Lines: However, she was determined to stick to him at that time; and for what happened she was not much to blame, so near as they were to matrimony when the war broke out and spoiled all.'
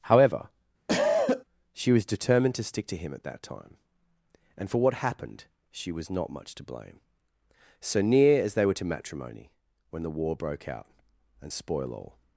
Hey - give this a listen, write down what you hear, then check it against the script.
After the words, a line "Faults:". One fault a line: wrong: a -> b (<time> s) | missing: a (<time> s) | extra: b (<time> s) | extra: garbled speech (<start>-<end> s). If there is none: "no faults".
However, she was determined to stick to him at that time; and for what happened she was not much to blame, so near as they were to matrimony when the war broke out and spoil all.'
Faults:
wrong: spoiled -> spoil (11.5 s)